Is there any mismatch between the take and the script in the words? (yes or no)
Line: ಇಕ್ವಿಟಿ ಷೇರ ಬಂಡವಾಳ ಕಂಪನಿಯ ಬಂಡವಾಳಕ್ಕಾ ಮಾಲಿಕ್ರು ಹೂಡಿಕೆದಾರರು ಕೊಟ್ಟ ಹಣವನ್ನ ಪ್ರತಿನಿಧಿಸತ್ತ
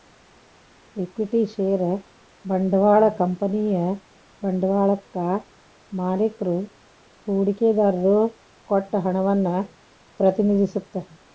no